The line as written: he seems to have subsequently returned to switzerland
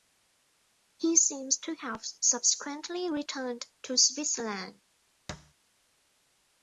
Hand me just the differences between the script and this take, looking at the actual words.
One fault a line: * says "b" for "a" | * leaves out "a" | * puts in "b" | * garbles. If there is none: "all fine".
all fine